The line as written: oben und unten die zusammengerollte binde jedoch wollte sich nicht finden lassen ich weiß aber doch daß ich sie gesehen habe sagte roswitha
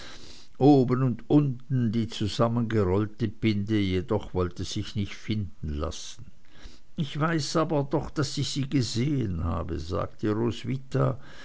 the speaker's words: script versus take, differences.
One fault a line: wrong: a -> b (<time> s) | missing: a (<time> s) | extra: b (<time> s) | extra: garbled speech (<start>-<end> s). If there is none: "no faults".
no faults